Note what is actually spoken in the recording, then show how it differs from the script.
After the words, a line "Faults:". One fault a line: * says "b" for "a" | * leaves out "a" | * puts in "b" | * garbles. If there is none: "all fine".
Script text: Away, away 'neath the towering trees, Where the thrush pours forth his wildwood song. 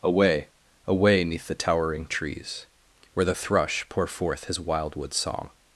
Away, away 'neath the towering trees, Where the thrush pour forth his wildwood song.
Faults:
* says "pour" for "pours"